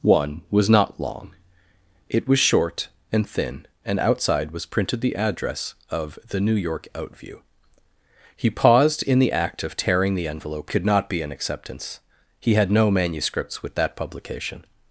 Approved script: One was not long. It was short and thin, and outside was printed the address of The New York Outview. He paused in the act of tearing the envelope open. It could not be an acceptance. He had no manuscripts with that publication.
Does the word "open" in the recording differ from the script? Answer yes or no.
yes